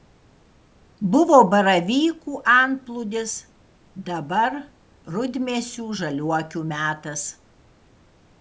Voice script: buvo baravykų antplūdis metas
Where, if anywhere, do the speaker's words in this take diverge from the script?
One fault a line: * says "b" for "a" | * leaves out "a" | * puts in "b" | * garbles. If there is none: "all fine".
* puts in "dabar rudmėsių žaliuokių"